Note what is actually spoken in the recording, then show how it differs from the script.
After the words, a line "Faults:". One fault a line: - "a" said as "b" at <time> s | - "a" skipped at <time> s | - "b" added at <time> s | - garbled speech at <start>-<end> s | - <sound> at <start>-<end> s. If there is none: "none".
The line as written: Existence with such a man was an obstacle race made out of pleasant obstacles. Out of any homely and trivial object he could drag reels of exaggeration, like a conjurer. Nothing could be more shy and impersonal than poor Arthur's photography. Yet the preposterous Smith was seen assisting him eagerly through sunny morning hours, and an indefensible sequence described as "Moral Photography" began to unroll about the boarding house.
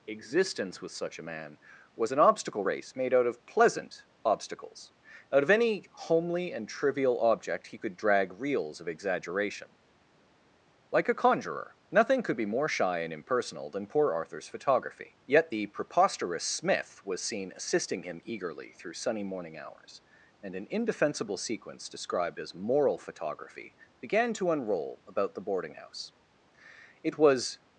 Existence with such a man was an obstacle race made out of pleasant obstacles. Out of any homely and trivial object he could drag reels of exaggeration, like a conjurer. Nothing could be more shy and impersonal than poor Arthur's photography. Yet the preposterous Smith was seen assisting him eagerly through sunny morning hours, and an indefensible sequence described as "Moral Photography" began to unroll about the boarding house. It was
Faults:
- "It was" added at 27.0 s